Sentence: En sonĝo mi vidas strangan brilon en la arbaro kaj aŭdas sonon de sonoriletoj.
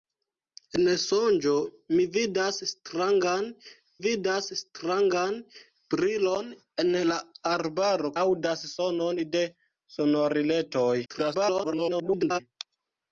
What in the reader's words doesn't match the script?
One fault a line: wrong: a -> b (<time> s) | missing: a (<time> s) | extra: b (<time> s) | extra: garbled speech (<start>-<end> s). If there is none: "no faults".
extra: vidas strangan (4.0 s)
missing: kaj (8.1 s)
extra: garbled speech (11.1-12.4 s)